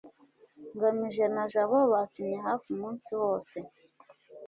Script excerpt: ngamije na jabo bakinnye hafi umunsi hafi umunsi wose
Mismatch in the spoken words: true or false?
true